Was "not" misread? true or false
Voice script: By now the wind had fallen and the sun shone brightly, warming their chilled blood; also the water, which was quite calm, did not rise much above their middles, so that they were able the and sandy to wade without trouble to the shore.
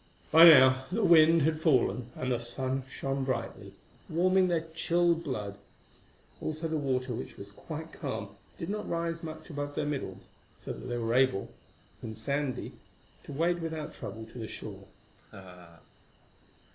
false